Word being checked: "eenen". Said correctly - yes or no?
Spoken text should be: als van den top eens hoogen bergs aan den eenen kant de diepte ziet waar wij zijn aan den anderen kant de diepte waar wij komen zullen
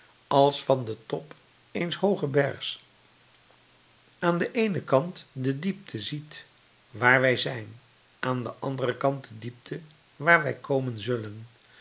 yes